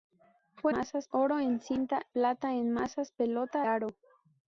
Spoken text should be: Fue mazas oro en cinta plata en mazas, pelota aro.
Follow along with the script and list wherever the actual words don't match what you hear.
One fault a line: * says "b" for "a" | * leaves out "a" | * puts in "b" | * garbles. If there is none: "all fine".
all fine